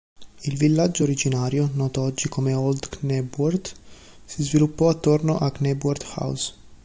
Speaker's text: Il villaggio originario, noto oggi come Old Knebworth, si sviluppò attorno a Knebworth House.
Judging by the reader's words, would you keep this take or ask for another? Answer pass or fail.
pass